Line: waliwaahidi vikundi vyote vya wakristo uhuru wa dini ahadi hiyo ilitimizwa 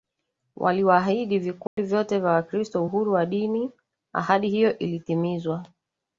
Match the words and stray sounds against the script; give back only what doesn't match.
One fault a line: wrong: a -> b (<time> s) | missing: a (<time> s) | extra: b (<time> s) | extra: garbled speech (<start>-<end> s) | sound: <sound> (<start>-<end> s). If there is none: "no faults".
sound: dropout (1.7-1.8 s)